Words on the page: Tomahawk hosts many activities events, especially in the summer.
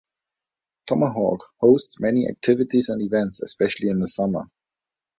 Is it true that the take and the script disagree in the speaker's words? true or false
true